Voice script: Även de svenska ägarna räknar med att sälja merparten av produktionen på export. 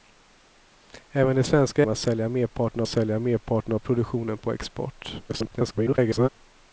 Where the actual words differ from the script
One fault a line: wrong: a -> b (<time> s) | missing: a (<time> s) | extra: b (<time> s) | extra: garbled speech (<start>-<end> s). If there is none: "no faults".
wrong: ägarna räknar med att -> med att sälja merparten (1.8 s)
extra: garbled speech (5.3-6.3 s)